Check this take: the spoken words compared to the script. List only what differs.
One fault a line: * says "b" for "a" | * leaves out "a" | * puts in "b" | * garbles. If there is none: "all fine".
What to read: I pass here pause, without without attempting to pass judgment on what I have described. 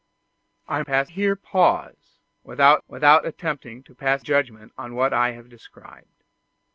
all fine